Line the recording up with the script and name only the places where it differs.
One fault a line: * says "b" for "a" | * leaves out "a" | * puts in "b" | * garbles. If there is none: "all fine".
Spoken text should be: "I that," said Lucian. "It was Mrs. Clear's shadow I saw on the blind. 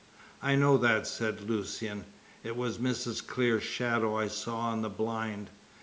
* puts in "know"